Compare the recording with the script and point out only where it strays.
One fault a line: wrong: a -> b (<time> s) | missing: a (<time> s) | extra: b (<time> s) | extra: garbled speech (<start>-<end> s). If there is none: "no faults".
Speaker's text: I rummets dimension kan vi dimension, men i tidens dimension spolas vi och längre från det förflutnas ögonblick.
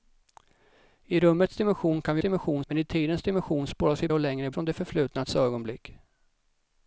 no faults